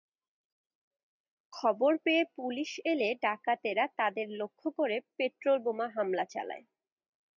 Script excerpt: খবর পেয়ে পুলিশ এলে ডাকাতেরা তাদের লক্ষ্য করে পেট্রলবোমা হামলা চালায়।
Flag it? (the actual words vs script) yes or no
no